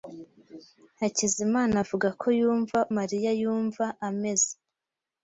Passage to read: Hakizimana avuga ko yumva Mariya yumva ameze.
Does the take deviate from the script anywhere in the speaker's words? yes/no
no